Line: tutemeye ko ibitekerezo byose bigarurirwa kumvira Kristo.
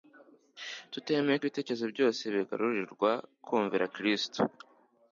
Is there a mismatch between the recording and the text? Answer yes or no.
no